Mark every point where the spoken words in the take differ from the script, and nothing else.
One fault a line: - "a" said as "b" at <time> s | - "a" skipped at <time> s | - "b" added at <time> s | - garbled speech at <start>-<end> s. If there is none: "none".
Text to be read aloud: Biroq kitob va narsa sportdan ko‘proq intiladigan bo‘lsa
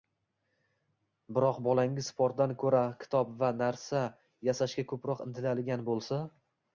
- "bolangiz sportdan ko‘ra" added at 1.7 s
- "sportdan" said as "yasashga" at 4.5 s